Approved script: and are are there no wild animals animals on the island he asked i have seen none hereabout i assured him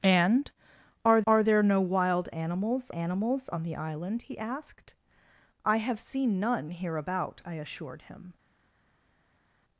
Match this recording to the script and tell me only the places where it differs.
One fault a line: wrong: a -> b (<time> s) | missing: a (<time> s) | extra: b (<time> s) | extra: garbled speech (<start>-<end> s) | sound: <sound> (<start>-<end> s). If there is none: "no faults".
no faults